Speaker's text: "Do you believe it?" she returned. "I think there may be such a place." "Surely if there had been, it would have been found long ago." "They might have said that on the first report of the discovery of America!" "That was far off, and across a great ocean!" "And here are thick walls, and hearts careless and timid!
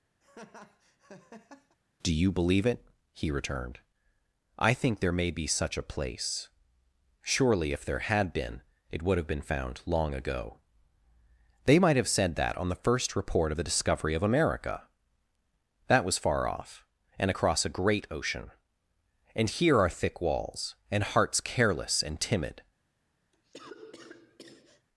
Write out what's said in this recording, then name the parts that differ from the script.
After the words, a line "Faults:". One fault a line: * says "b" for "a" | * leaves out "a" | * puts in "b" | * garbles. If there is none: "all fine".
"Do you believe it?" he returned. "I think there may be such a place." "Surely if there had been, it would have been found long ago." "They might have said that on the first report of the discovery of America!" "That was far off, and across a great ocean!" "And here are thick walls, and hearts careless and timid!
Faults:
* says "he" for "she"